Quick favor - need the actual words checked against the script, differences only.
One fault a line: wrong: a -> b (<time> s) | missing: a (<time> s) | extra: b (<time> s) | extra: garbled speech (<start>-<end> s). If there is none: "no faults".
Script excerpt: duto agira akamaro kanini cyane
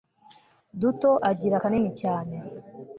missing: akamaro (1.6 s)